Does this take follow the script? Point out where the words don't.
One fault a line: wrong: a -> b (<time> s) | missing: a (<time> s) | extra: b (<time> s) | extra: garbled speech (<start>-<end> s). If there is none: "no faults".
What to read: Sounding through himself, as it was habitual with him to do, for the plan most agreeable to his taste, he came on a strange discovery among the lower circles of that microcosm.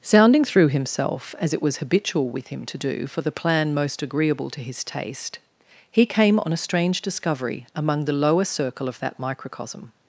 wrong: circles -> circle (8.5 s)